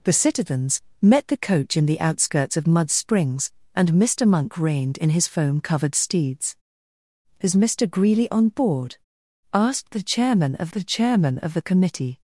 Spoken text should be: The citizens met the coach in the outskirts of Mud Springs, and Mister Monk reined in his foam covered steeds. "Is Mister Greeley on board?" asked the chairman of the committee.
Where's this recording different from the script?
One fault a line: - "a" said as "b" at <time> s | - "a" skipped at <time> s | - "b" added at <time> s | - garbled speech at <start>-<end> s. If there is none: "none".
- "chairman of the" added at 10.8 s